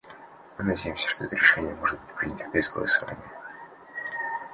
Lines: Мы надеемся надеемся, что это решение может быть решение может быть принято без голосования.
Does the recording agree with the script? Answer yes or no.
no